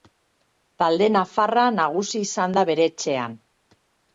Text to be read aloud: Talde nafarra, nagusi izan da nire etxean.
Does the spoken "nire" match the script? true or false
false